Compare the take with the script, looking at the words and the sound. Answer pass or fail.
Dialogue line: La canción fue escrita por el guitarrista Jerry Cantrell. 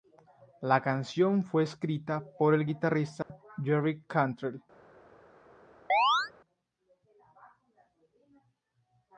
fail